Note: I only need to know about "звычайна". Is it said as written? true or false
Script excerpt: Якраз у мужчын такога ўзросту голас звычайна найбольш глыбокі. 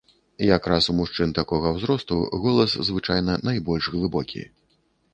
true